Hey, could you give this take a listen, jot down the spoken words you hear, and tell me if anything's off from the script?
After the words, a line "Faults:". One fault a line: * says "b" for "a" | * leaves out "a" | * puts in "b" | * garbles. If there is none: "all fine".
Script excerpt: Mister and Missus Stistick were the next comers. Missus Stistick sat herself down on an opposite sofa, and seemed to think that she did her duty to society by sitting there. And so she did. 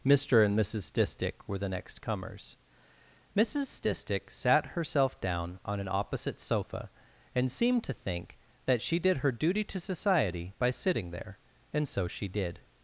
Mister and Missus Stistick were the next comers. Missus Stistick sat herself down on an opposite sofa, and seemed to think that she did her duty to society by sitting there. And so she did.
Faults:
all fine